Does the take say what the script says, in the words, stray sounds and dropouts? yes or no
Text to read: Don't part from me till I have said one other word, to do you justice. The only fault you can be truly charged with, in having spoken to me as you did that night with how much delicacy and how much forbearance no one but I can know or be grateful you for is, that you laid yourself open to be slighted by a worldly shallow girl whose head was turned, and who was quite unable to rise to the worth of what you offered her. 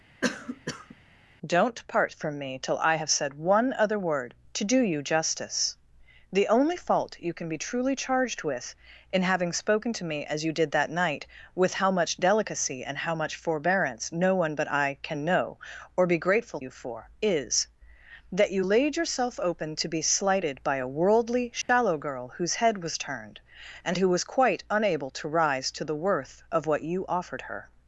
no